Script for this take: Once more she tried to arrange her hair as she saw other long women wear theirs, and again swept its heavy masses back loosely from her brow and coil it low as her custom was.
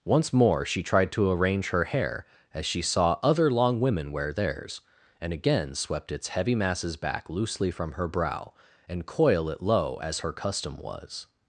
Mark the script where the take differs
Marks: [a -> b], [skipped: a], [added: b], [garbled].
Once more she tried to arrange her hair as she saw other long women wear theirs, and again swept its heavy masses back loosely from her brow and coil it low as her custom was.